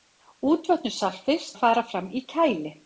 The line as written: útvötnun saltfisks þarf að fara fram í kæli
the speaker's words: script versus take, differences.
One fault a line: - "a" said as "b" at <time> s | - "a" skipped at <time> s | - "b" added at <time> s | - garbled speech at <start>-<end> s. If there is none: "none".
- "þarf" skipped at 1.5 s